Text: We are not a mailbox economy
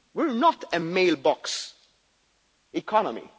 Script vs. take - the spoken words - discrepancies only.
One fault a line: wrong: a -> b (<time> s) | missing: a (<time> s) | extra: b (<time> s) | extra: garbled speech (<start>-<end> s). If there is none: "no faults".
no faults